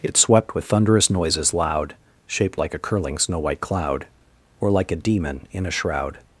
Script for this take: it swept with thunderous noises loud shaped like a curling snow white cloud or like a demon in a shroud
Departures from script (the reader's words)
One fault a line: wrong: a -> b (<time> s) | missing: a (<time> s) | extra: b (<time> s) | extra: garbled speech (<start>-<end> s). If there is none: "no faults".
no faults